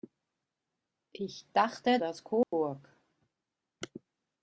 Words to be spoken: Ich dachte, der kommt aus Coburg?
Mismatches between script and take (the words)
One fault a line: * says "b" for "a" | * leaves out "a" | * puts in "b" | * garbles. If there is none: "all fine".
* leaves out "der kommt"